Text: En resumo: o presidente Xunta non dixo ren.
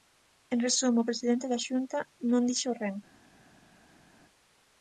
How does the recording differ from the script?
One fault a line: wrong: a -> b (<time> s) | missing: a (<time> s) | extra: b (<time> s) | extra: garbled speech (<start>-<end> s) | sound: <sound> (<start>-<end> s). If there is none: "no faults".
extra: da (1.5 s)